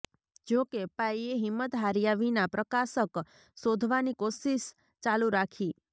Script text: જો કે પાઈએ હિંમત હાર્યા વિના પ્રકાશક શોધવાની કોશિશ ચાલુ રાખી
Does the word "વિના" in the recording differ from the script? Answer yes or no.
no